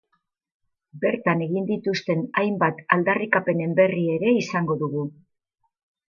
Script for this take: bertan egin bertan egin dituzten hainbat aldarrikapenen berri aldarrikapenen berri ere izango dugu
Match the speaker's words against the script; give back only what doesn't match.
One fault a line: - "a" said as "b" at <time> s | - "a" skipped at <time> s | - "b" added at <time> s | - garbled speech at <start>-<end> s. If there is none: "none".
- "bertan egin" skipped at 1.7 s
- "aldarrikapenen berri" skipped at 4.0 s